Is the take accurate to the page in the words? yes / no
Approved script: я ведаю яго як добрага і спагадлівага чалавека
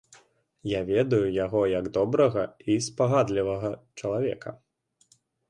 yes